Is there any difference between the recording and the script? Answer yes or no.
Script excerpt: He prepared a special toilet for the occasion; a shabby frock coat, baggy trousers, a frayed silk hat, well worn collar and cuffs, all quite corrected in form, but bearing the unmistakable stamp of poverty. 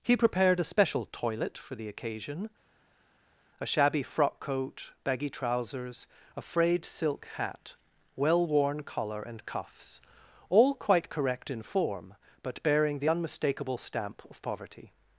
yes